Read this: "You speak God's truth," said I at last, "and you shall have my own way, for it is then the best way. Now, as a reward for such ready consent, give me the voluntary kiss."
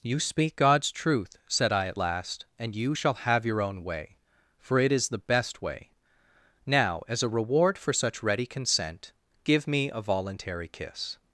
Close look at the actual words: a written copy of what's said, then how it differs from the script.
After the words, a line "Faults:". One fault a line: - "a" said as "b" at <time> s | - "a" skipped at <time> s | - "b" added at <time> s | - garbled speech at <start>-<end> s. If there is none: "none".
"You speak God's truth," said I at last, "and you shall have your own way, for it is the best way. Now, as a reward for such ready consent, give me a voluntary kiss."
Faults:
- "my" said as "your" at 3.4 s
- "then" skipped at 5.1 s
- "the" said as "a" at 9.9 s